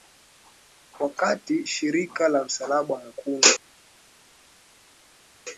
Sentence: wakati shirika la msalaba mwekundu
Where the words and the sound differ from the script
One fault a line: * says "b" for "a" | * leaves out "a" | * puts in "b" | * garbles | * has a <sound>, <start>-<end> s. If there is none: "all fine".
all fine